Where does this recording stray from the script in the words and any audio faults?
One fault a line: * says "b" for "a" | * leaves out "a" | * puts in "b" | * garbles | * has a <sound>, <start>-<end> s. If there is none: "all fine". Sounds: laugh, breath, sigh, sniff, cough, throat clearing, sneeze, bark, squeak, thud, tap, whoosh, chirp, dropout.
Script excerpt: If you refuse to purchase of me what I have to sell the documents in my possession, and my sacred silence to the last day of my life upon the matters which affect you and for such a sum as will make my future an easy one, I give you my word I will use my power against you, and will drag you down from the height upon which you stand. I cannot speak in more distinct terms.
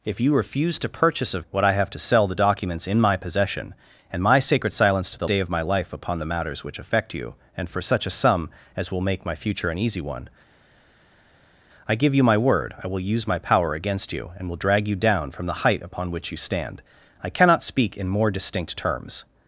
* leaves out "me"
* leaves out "last"